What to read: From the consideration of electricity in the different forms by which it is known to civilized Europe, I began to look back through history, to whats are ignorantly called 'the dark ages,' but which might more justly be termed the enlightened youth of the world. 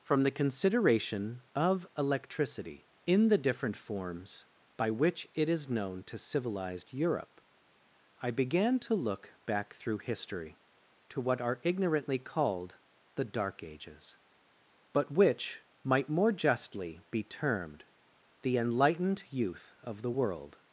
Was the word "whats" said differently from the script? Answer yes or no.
yes